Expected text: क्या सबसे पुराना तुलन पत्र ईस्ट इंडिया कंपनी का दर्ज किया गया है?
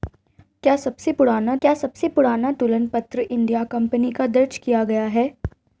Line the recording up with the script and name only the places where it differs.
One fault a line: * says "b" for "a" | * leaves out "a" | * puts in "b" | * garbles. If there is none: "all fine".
* puts in "क्या सबसे पुराना"
* leaves out "ईस्ट"